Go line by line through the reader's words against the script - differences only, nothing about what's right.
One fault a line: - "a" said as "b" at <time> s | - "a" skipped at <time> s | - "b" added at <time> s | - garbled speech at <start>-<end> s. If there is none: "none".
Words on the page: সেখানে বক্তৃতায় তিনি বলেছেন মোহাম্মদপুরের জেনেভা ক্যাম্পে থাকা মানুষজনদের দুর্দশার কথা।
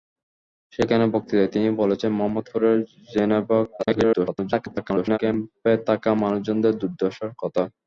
- garbled speech at 3.8-5.2 s